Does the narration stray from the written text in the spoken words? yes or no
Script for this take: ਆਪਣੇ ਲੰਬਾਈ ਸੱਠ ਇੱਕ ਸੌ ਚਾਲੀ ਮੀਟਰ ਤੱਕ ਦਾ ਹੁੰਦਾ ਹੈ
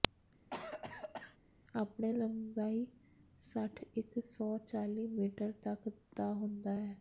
no